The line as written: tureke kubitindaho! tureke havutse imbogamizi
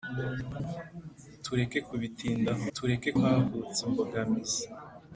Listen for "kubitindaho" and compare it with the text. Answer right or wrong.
right